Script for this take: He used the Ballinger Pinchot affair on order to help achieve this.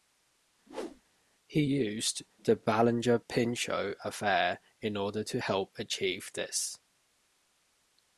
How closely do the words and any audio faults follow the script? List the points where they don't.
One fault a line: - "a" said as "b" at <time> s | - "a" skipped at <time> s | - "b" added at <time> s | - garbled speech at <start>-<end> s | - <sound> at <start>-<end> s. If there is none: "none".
- whoosh at 0.7-1.0 s
- "on" said as "in" at 4.8 s